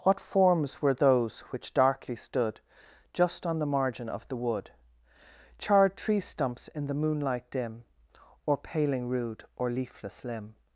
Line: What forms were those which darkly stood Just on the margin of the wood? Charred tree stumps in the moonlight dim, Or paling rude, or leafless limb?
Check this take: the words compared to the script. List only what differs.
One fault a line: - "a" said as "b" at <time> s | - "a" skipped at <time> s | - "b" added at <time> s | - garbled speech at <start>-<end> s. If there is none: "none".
none